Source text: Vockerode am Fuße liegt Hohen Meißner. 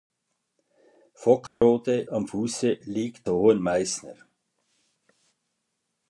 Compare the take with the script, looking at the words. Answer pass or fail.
pass